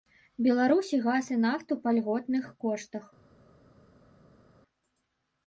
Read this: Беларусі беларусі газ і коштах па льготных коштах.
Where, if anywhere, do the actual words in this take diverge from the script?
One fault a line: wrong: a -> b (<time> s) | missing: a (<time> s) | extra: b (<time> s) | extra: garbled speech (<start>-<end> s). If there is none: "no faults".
missing: беларусі (1.0 s)
wrong: коштах -> нафту (1.4 s)